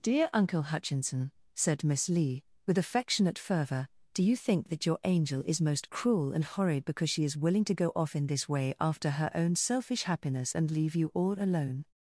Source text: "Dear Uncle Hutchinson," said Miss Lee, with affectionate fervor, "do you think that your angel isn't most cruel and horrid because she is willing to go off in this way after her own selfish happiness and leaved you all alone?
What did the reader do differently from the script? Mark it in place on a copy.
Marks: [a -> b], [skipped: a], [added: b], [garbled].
"Dear Uncle Hutchinson," said Miss Lee, with affectionate fervor, "do you think that your angel [isn't -> is] most cruel and horrid because she is willing to go off in this way after her own selfish happiness and [leaved -> leave] you all alone?